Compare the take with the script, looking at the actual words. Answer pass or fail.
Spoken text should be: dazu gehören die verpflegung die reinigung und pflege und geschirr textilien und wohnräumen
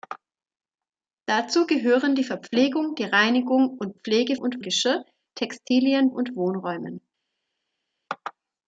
pass